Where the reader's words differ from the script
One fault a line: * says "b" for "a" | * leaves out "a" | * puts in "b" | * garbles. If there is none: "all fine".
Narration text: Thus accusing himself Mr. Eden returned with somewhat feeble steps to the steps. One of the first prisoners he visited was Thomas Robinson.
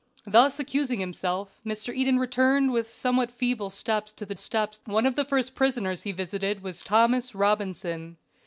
all fine